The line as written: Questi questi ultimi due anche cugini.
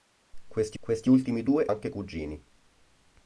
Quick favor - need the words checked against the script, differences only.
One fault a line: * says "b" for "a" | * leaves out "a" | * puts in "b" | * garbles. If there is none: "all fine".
all fine